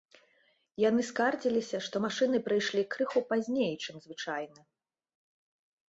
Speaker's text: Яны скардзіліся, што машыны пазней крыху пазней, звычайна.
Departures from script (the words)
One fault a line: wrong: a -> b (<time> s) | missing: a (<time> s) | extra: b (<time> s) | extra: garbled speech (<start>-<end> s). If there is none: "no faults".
wrong: пазней -> прыйшлі (2.5 s)
extra: чым (3.8 s)